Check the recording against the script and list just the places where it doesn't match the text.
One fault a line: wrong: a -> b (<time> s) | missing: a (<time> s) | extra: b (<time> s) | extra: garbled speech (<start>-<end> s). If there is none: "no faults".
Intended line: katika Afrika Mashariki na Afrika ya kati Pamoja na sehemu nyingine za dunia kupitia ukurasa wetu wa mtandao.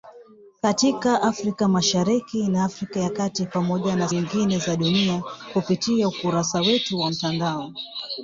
missing: sehemu (4.1 s)